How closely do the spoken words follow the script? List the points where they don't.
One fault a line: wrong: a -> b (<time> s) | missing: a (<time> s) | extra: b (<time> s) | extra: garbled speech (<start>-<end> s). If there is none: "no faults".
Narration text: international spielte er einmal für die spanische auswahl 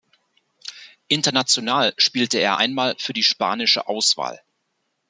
no faults